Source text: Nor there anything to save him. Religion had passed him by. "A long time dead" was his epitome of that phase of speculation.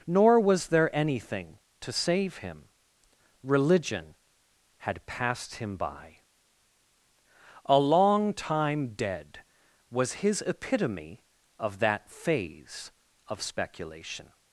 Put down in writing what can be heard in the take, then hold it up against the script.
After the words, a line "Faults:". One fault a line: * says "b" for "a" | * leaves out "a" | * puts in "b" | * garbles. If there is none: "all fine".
Nor was there anything to save him. Religion had passed him by. "A long time dead" was his epitome of that phase of speculation.
Faults:
* puts in "was"